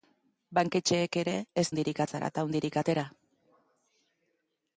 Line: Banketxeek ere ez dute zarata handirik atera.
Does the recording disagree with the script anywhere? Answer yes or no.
yes